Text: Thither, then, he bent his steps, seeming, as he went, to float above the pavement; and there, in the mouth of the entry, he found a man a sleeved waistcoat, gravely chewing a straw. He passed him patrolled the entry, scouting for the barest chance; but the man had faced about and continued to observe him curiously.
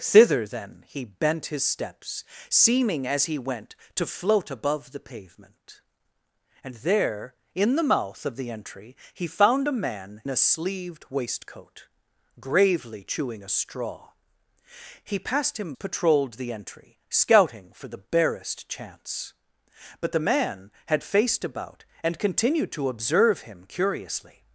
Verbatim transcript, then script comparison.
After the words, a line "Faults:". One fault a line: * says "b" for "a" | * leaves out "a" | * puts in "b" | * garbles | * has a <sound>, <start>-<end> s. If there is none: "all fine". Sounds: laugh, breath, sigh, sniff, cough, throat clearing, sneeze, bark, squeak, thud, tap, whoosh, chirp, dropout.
Thither, then, he bent his steps, seeming, as he went, to float above the pavement; and there, in the mouth of the entry, he found a man a sleeved waistcoat, gravely chewing a straw. He passed him patrolled the entry, scouting for the barest chance; but the man had faced about and continued to observe him curiously.
Faults:
all fine